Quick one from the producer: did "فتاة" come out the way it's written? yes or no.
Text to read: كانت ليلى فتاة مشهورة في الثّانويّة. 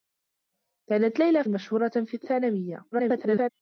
no